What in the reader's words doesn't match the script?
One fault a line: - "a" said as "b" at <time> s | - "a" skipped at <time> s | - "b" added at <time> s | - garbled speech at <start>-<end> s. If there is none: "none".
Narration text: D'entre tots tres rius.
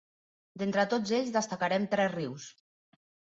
- "ells destacarem" added at 1.2 s